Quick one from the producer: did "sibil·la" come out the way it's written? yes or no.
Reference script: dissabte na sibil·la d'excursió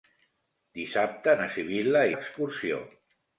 yes